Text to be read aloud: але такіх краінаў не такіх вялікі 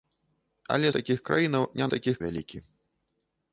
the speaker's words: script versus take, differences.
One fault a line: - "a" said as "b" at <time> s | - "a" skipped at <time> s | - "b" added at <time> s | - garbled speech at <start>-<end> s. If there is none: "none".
none